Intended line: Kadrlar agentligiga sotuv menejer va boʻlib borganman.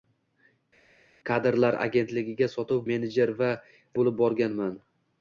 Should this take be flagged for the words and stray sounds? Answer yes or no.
no